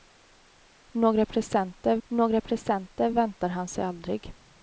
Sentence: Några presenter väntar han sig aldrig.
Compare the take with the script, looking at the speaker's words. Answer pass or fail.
fail